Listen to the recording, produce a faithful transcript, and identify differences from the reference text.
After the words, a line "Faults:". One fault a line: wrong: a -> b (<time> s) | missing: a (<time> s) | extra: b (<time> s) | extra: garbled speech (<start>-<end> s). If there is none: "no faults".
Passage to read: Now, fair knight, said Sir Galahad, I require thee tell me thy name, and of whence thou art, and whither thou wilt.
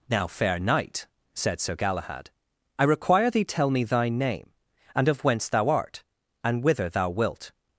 Now, fair knight, said Sir Galahad, I require thee tell me thy name, and of whence thou art, and whither thou wilt.
Faults:
no faults